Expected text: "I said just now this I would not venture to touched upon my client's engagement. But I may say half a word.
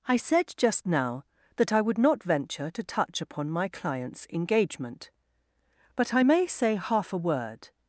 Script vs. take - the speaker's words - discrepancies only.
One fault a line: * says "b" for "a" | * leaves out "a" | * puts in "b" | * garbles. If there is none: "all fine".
* says "that" for "this"
* says "touch" for "touched"